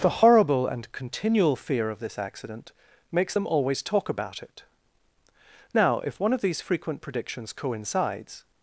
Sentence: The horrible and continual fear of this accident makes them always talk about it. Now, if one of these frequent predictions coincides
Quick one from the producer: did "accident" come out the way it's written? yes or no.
yes